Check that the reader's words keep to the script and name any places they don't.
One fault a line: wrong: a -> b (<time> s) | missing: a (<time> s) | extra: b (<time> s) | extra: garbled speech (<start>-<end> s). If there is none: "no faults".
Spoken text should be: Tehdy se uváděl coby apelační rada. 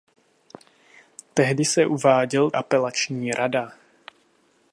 missing: coby (2.5 s)